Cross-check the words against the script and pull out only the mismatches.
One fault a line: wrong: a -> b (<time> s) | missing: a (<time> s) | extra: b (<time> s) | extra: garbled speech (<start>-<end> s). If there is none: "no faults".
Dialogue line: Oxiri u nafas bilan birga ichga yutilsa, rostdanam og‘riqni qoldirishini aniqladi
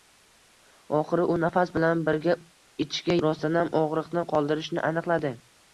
missing: yutilsa (3.2 s)